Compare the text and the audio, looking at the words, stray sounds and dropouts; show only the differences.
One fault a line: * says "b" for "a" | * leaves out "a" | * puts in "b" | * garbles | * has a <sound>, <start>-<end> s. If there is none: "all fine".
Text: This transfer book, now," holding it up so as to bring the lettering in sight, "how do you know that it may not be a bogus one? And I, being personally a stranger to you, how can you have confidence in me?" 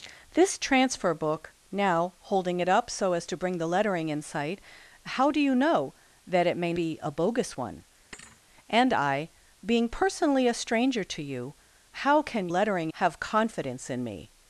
* leaves out "not"
* has a thud, 8.1-8.4 s
* says "lettering" for "you"